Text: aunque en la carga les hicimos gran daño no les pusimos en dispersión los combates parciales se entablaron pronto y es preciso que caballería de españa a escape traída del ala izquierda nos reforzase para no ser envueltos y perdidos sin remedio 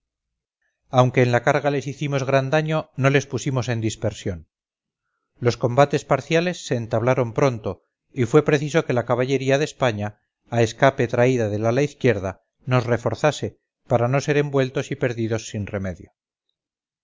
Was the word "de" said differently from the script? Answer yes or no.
no